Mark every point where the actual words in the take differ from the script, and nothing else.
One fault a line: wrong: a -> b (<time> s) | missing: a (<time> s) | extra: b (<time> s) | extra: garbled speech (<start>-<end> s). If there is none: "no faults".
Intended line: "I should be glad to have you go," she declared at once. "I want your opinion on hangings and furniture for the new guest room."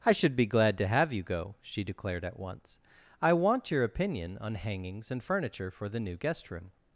no faults